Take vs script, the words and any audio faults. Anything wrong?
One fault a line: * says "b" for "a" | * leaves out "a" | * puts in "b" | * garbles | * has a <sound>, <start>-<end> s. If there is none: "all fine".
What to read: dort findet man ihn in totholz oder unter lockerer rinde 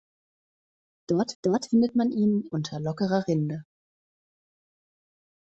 * puts in "dort"
* leaves out "in totholz oder"